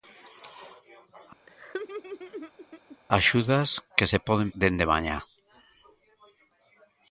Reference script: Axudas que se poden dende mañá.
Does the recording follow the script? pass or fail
pass